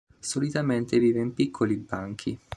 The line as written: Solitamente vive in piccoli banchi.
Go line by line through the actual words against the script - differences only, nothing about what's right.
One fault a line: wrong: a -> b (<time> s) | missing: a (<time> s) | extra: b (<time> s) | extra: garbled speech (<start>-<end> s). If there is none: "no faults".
no faults